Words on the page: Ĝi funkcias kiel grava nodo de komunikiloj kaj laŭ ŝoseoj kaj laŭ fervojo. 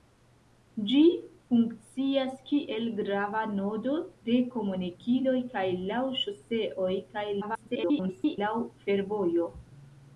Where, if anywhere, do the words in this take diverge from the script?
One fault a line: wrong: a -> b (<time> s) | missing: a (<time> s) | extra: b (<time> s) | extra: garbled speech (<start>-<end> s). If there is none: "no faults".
extra: garbled speech (7.4-8.4 s)